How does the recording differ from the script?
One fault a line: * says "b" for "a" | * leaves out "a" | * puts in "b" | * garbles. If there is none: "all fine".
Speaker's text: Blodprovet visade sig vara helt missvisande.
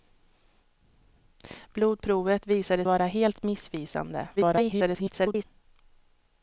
* leaves out "sig"
* garbles